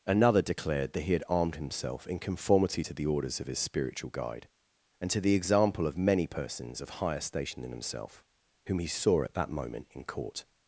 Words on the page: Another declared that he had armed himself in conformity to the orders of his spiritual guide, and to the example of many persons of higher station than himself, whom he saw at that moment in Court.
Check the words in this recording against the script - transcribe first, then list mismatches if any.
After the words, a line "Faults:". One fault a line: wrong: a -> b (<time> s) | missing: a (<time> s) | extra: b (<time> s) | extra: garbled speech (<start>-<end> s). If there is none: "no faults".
Another declared that he had armed himself in conformity to the orders of his spiritual guide, and to the example of many persons of higher station than himself, whom he saw at that moment in Court.
Faults:
no faults